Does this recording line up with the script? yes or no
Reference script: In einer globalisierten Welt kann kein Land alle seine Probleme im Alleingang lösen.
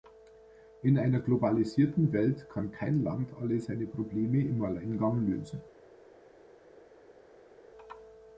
yes